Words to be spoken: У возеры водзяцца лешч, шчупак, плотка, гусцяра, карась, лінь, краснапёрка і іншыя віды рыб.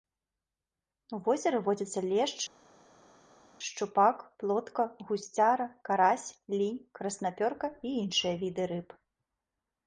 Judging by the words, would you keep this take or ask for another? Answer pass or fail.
pass